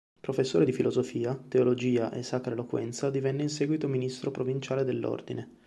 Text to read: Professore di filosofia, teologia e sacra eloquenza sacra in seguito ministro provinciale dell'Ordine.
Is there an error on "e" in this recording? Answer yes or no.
no